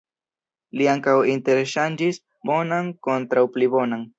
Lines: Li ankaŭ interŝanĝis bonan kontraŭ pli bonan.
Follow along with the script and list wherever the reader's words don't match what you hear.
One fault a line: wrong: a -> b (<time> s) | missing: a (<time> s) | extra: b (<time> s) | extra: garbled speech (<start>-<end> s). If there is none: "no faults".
no faults